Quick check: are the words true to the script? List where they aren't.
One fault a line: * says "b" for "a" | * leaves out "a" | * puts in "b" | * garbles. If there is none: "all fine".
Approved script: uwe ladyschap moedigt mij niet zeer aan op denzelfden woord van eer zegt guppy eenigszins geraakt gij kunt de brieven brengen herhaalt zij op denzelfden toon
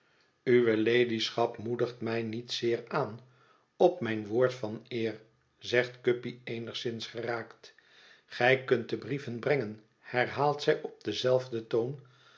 * says "mijn" for "denzelfden"